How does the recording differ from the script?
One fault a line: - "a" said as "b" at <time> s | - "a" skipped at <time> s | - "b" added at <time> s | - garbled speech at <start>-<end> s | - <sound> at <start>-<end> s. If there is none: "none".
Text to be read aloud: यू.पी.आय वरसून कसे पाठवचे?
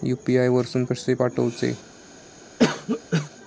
- cough at 2.6-3.3 s